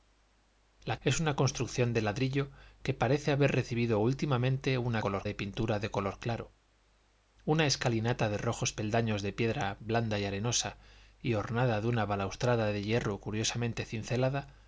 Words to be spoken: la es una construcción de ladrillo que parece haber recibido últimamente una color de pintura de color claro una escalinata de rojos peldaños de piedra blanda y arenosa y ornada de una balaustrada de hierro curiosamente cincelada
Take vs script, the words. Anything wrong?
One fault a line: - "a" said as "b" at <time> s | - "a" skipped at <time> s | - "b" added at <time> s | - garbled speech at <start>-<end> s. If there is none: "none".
none